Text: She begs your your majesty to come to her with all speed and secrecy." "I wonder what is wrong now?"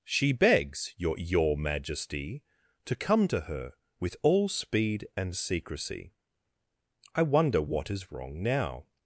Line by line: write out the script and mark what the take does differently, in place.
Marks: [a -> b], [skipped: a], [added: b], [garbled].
She begs your your majesty to come to her with all speed and secrecy." "I wonder what is wrong now?"